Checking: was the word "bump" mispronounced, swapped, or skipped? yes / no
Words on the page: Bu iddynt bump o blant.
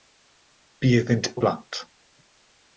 yes